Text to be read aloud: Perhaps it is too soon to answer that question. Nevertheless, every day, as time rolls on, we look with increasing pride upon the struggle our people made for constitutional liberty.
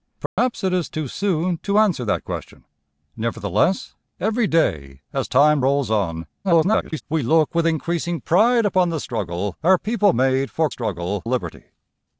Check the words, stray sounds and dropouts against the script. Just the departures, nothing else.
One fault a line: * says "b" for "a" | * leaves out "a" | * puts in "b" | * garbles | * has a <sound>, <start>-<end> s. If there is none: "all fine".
* has a dropout, 0.3-0.4 s
* garbles
* says "struggle" for "constitutional"